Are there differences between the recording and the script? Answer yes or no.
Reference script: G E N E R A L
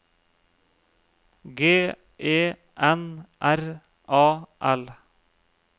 yes